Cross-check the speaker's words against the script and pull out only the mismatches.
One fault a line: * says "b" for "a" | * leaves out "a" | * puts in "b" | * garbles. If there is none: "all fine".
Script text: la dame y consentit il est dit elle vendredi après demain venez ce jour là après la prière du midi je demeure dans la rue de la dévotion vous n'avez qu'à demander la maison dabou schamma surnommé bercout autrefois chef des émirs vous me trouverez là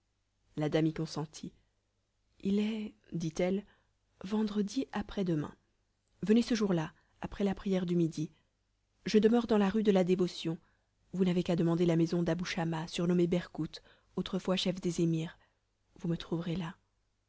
all fine